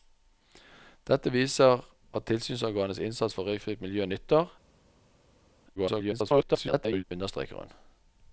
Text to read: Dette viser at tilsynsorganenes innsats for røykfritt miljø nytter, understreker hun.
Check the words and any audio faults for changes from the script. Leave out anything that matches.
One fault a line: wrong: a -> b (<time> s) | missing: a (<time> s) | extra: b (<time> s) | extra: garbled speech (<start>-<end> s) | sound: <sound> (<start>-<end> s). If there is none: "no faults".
extra: garbled speech (5.8-7.0 s)